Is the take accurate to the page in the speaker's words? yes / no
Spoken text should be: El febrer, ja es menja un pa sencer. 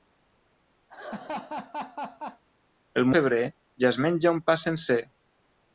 yes